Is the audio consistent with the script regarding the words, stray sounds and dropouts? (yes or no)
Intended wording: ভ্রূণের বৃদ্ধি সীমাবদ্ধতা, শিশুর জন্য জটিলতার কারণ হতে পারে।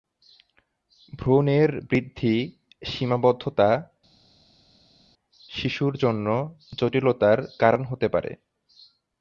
yes